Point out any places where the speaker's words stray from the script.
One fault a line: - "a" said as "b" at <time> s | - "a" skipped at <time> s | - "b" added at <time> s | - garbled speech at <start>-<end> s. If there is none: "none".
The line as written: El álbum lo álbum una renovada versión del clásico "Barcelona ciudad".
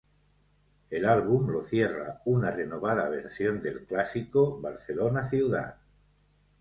- "álbum" said as "cierra" at 1.6 s